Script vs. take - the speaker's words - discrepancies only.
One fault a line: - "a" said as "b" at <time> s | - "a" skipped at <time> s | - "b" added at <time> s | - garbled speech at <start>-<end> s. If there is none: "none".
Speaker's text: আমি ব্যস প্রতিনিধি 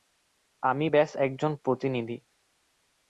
- "একজন" added at 1.2 s